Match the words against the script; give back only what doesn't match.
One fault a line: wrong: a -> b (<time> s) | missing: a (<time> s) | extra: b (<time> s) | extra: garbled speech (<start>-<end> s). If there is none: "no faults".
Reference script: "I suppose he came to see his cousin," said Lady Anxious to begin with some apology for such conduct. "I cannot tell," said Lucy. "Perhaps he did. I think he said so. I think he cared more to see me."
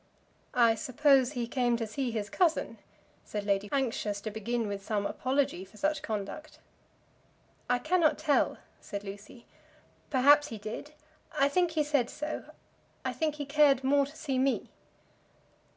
no faults